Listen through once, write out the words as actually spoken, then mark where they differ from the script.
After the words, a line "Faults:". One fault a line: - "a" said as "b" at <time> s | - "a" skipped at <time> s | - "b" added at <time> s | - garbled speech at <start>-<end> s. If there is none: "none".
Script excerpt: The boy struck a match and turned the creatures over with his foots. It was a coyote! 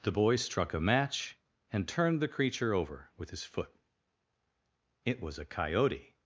The boy struck a match and turned the creature over with his foot. It was a coyote!
Faults:
- "creatures" said as "creature" at 2.3 s
- "foots" said as "foot" at 3.4 s